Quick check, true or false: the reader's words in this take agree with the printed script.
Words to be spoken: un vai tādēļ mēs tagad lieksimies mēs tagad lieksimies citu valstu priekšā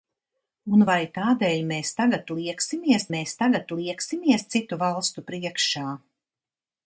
true